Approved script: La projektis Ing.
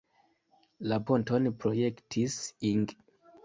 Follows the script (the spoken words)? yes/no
no